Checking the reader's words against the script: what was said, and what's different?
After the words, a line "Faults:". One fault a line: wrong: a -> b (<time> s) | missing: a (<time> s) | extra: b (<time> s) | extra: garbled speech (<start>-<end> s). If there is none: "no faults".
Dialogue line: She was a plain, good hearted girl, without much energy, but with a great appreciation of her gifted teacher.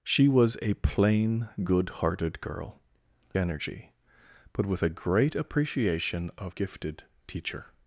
She was a plain, good hearted girl, energy, but with a great appreciation of gifted teacher.
Faults:
missing: without much (2.8 s)
missing: her (6.6 s)